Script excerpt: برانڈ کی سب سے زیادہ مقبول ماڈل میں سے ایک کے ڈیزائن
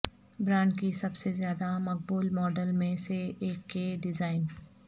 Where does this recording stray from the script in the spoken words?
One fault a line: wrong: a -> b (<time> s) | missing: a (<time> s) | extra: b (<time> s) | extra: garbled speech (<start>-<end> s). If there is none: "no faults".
no faults